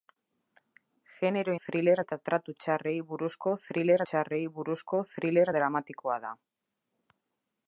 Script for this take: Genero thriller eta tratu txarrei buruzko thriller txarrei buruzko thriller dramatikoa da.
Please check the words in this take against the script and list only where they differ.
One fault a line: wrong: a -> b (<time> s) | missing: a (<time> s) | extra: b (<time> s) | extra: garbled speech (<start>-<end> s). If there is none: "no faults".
no faults